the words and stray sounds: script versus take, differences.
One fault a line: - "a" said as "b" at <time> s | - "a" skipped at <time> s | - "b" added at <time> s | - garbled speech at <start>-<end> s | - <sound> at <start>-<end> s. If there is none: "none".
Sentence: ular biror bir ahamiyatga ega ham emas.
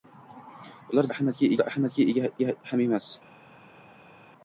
- "biror" said as "ahamiyatga" at 1.1 s
- "ega" added at 2.4 s